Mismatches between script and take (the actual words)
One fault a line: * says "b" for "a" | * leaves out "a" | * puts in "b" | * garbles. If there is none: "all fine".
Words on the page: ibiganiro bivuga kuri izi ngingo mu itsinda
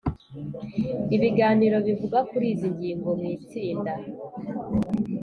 all fine